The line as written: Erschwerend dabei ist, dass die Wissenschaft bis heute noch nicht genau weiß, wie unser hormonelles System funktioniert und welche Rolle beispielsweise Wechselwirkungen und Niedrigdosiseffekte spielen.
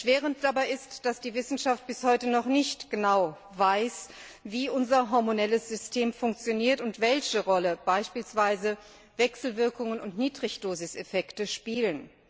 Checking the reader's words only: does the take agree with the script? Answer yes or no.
yes